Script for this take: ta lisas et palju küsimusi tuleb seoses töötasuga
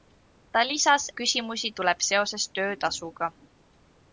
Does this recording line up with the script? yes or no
no